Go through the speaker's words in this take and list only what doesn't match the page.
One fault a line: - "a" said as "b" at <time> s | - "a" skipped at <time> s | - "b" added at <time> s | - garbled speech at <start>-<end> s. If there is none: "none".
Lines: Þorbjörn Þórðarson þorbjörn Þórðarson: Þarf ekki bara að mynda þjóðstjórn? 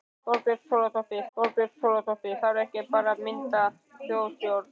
none